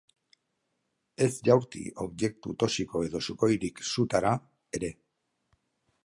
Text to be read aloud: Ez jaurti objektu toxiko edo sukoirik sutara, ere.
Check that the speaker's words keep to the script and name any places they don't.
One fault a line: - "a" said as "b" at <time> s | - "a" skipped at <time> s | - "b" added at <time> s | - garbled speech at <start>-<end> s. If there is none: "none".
none